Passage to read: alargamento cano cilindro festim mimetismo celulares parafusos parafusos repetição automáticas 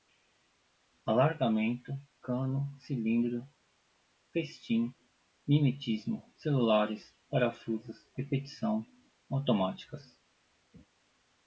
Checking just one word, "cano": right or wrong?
right